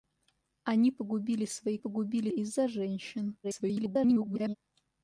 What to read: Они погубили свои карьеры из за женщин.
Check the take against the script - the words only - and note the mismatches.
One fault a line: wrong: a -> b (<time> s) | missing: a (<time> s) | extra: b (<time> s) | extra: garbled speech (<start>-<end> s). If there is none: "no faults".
wrong: карьеры -> погубили (1.8 s)
extra: garbled speech (3.4-4.6 s)